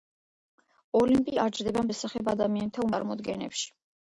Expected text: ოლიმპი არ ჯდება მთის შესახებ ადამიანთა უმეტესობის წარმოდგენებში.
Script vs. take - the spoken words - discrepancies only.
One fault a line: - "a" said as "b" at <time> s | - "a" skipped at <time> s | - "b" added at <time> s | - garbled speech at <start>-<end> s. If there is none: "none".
- "მთის" skipped at 1.9 s
- "უმეტესობის" skipped at 2.9 s